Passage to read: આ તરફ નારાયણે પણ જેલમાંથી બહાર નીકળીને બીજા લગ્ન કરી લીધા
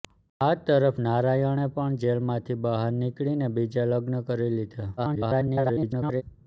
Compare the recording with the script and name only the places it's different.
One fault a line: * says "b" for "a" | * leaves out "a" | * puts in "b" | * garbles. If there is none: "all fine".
* garbles